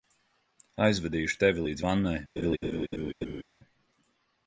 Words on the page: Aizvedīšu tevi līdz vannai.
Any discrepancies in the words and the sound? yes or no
yes